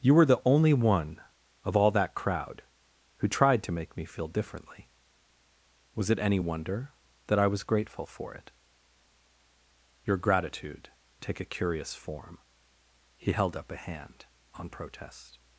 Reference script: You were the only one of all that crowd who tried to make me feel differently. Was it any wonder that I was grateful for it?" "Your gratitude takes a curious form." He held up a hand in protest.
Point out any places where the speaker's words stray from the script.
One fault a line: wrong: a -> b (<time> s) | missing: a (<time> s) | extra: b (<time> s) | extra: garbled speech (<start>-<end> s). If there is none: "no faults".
wrong: takes -> take (11.2 s)
wrong: in -> on (14.5 s)